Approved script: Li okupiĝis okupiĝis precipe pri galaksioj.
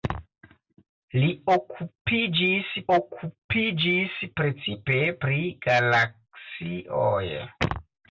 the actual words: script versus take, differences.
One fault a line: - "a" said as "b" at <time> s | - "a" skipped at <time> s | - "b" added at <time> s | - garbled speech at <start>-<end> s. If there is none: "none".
none